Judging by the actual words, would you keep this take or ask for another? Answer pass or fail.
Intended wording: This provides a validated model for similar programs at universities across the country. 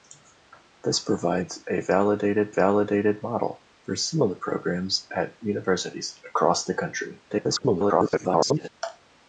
fail